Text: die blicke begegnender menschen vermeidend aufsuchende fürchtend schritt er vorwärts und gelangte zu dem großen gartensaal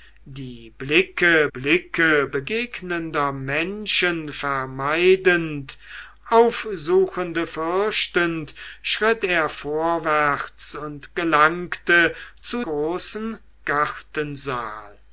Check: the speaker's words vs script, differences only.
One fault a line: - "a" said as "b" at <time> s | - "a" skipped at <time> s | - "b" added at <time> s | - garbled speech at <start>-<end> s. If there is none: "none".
- "blicke" added at 1.5 s
- "dem" skipped at 12.6 s